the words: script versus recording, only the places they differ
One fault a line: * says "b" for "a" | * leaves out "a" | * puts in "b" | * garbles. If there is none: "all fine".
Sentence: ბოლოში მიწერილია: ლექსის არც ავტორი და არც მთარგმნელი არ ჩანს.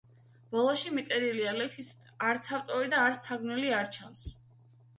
all fine